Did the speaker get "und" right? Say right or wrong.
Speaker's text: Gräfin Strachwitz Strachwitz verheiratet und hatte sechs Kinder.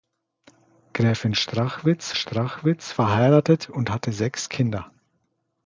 right